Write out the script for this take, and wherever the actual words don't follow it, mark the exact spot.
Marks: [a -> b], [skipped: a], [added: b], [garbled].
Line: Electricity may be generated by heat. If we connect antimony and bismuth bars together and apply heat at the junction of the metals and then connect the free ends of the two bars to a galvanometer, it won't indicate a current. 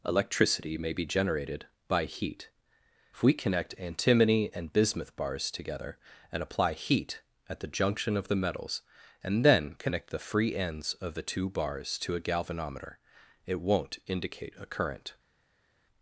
Electricity may be generated by heat. If we connect antimony and bismuth bars together and apply heat at the junction of the metals and then connect the free ends of the two bars to a galvanometer, it won't indicate a current.